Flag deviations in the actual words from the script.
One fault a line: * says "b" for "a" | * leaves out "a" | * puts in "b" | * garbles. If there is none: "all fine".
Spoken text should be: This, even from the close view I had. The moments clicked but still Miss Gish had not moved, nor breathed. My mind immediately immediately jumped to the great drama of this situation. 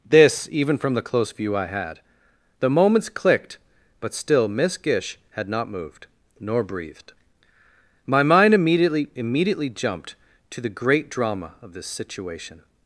all fine